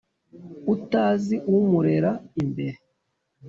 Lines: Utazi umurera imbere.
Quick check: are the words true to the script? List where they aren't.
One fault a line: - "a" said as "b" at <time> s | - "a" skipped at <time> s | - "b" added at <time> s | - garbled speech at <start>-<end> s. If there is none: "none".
none